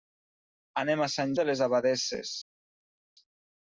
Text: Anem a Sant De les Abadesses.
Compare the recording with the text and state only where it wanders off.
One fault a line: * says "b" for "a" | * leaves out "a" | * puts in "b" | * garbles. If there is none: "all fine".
all fine